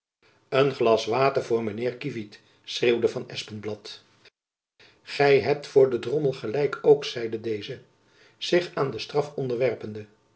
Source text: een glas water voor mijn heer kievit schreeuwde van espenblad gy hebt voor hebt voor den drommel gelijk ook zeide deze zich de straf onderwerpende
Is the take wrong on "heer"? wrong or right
right